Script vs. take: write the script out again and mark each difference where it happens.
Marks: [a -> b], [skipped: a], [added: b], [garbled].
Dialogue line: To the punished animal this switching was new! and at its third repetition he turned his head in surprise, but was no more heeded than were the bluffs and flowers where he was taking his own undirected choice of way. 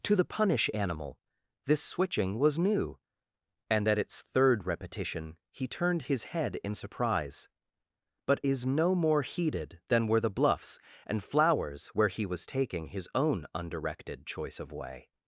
To the [punished -> punish] animal this switching was new! and at its third repetition he turned his head in surprise, but [was -> is] no more heeded than were the bluffs and flowers where he was taking his own undirected choice of way.